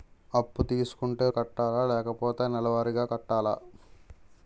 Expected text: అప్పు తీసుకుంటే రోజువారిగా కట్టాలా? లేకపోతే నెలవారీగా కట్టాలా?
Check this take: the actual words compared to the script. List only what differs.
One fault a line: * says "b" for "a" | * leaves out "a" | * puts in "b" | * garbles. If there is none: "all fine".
* leaves out "రోజువారిగా"